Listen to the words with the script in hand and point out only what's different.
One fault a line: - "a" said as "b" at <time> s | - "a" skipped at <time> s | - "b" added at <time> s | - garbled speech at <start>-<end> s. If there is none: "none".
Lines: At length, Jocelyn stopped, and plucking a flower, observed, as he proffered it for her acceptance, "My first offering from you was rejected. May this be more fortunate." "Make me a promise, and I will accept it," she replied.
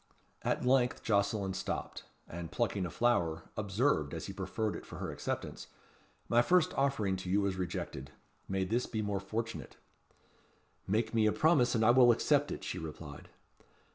- "from" said as "to" at 7.2 s